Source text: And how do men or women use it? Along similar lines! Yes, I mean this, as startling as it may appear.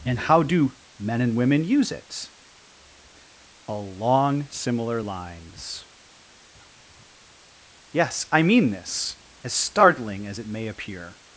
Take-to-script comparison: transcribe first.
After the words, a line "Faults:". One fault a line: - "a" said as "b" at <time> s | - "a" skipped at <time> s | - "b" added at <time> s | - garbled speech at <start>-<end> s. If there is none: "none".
And how do men and women use it? Along similar lines! Yes, I mean this, as startling as it may appear.
Faults:
- "or" said as "and" at 1.2 s